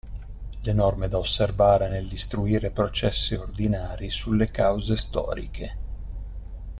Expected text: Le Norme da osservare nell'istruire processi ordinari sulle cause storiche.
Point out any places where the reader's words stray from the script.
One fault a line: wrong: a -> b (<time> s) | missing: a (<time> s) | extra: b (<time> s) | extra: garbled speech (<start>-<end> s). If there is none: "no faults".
no faults